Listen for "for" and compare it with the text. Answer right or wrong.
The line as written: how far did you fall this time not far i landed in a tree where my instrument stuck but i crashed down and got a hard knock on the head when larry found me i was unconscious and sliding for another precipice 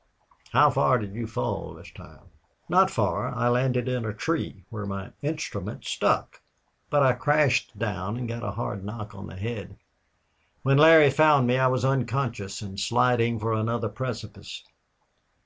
right